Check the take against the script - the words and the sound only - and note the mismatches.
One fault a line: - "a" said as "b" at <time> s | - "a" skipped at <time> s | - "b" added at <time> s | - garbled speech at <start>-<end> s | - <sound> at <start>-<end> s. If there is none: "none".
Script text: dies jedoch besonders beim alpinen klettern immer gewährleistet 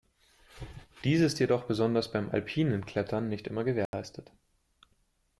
- "ist" added at 1.2 s
- "nicht" added at 3.3 s
- dropout at 3.9-3.9 s